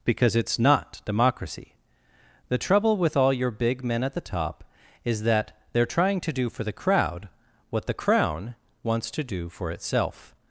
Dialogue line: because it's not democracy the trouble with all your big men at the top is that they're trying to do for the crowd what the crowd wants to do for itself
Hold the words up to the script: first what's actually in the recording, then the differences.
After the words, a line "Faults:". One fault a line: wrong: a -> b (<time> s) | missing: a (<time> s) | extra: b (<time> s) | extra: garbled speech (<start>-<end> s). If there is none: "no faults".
because it's not democracy the trouble with all your big men at the top is that they're trying to do for the crowd what the crown wants to do for itself
Faults:
wrong: crowd -> crown (7.9 s)